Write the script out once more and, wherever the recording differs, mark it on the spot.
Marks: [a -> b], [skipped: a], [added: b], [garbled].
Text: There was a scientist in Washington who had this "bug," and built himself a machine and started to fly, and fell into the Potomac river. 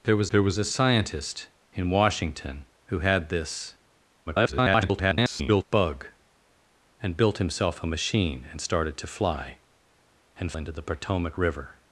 There was [added: there was] a scientist in Washington who had this [garbled] "bug," and built himself a machine and started to fly, and [skipped: fell] into the Potomac river.